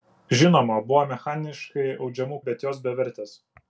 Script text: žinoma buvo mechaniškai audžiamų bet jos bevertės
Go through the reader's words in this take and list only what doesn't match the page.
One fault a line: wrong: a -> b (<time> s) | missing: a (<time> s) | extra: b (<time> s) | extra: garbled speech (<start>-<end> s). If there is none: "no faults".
no faults